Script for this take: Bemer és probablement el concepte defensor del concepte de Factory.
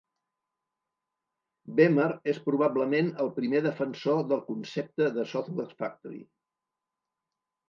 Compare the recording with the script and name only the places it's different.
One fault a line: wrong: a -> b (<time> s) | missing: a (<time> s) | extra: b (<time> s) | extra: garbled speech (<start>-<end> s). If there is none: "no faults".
wrong: concepte -> primer (3.4 s)
extra: Software (5.3 s)